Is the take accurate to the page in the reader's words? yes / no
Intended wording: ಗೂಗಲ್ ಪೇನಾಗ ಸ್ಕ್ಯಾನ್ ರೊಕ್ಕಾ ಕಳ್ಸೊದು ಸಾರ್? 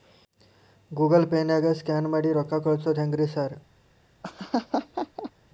no